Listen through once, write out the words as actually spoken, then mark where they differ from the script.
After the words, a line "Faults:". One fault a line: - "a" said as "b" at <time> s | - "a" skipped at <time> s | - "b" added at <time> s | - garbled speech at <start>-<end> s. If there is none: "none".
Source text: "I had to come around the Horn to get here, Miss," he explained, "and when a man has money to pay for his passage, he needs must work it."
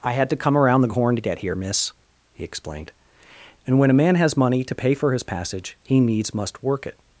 "I had to come around the Horn to get here, Miss," he explained, "and when a man has money to pay for his passage, he needs must work it."
Faults:
none